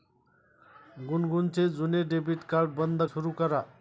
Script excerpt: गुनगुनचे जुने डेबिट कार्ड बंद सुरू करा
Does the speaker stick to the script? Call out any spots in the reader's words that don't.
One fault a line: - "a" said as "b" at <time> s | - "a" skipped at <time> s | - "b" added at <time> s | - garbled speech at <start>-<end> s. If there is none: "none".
none